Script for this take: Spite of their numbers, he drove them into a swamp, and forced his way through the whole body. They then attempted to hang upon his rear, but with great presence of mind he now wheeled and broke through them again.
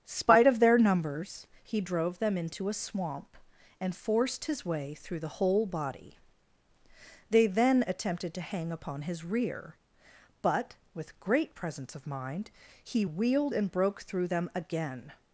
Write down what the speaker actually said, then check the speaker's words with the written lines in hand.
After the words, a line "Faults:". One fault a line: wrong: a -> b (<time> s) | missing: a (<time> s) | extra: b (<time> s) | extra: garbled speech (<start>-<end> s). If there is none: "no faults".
Spite of their numbers, he drove them into a swamp, and forced his way through the whole body. They then attempted to hang upon his rear, but with great presence of mind he wheeled and broke through them again.
Faults:
missing: now (13.0 s)